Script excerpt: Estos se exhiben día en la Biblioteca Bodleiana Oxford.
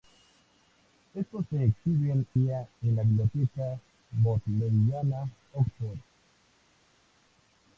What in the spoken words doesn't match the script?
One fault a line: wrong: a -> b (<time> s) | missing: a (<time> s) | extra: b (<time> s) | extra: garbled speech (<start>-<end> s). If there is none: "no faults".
no faults